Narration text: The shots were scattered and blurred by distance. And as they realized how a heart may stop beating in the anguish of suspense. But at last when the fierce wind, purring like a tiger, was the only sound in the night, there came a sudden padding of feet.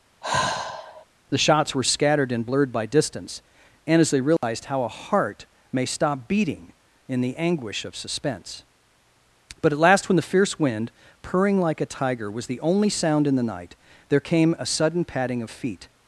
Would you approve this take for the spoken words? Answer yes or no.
yes